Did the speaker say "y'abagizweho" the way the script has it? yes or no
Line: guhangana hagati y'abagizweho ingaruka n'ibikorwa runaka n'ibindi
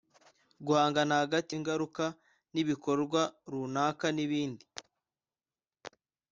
no